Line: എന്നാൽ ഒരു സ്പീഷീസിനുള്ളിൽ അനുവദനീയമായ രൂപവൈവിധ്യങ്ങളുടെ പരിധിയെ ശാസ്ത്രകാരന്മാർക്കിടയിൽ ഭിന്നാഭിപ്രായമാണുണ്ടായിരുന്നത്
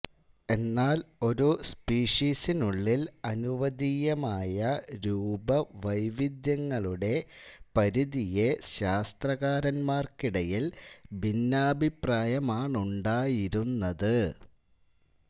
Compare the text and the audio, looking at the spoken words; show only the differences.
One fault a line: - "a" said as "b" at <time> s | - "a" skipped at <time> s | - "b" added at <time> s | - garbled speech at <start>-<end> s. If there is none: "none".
none